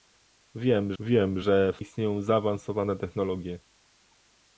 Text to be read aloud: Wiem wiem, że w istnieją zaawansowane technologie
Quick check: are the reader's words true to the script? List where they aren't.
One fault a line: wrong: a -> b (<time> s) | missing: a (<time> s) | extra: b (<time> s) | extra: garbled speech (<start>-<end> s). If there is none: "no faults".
no faults